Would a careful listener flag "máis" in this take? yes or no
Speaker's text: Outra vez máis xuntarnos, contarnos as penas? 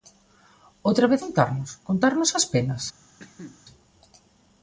yes